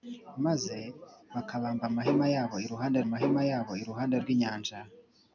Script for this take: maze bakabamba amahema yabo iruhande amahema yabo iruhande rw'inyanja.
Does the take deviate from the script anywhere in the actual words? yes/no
no